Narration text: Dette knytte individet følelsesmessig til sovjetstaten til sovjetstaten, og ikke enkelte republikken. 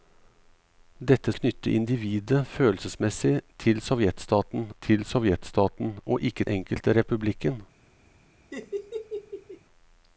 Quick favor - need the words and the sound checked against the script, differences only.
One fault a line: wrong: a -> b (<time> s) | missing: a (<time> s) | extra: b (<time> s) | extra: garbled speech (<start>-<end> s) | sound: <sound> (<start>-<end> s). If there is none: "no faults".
sound: laugh (8.5-9.6 s)